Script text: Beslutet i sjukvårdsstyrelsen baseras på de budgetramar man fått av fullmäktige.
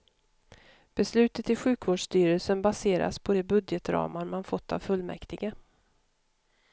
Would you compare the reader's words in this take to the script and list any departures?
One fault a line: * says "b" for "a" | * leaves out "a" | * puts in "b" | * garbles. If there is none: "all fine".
all fine